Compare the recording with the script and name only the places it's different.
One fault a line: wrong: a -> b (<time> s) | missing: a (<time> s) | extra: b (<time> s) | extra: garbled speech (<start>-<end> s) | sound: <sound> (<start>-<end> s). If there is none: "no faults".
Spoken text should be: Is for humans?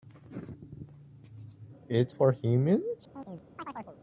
sound: chirp (3.1-4.0 s)